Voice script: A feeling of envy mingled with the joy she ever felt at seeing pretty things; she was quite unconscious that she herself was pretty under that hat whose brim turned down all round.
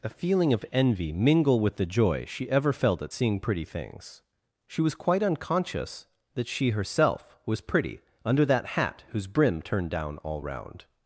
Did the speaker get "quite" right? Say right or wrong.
right